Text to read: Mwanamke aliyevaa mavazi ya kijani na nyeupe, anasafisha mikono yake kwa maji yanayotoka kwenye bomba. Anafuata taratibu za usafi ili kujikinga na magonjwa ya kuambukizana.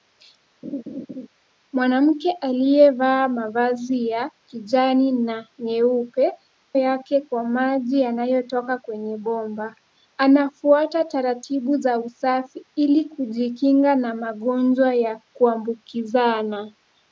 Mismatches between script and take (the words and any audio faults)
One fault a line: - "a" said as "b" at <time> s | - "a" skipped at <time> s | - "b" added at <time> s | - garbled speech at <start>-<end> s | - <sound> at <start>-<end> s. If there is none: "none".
- laugh at 0.6-1.3 s
- "anasafisha mikono" skipped at 6.3 s